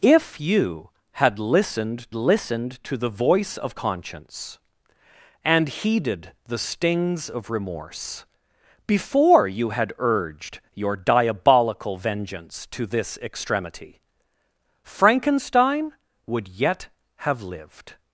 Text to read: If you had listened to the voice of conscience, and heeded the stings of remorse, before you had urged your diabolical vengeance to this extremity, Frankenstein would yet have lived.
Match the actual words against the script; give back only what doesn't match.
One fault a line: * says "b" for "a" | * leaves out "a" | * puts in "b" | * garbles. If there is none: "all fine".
* puts in "listened"